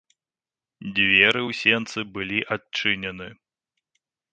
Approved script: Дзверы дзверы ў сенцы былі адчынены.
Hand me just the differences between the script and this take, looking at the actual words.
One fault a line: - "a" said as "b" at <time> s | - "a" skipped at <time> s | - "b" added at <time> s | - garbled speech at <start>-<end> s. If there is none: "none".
- "дзверы" skipped at 1.4 s